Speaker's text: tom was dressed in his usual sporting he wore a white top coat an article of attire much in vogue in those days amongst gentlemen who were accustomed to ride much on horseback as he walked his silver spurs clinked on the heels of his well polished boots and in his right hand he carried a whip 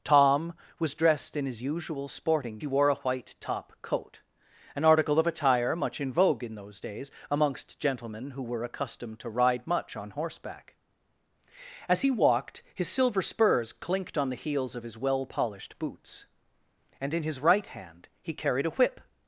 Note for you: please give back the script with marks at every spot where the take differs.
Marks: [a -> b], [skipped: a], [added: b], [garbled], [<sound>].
tom was dressed in his usual sporting he wore a white top coat an article of attire much in vogue in those days amongst gentlemen who were accustomed to ride much on horseback as he walked his silver spurs clinked on the heels of his well polished boots and in his right hand he carried a whip